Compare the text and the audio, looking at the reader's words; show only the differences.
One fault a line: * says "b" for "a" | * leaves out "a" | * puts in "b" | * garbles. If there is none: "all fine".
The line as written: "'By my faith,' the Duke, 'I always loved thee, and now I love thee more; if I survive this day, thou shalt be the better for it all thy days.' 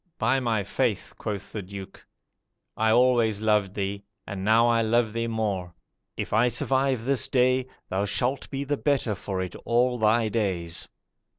* puts in "quoth"